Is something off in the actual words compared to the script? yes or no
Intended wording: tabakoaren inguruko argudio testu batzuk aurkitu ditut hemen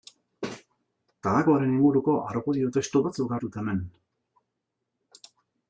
yes